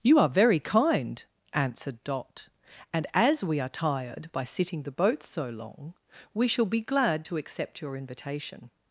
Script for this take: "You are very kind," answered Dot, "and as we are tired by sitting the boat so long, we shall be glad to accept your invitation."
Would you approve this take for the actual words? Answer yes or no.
yes